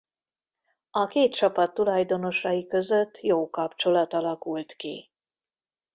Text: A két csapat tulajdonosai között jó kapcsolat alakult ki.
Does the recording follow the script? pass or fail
pass